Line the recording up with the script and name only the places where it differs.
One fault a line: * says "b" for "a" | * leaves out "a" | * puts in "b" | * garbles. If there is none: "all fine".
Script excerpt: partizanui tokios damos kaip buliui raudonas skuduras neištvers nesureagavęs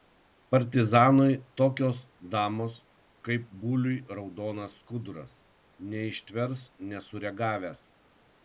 all fine